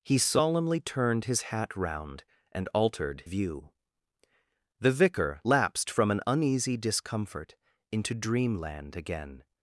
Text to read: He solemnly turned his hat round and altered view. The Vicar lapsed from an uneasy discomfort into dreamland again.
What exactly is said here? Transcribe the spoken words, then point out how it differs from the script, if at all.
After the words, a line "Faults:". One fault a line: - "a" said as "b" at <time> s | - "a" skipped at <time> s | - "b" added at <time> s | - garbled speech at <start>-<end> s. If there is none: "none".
He solemnly turned his hat round and altered view. The Vicar lapsed from an uneasy discomfort into dreamland again.
Faults:
none